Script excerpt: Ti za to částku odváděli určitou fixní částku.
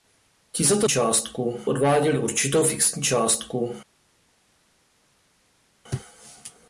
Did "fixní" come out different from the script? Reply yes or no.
no